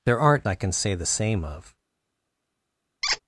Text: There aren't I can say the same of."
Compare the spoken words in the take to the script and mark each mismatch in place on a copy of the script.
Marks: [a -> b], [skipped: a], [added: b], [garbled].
There aren't I can say the same of."